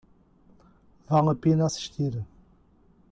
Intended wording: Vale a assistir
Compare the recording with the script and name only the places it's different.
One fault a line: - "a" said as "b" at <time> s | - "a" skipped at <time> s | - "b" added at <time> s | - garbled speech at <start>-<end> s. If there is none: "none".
- "pena" added at 1.4 s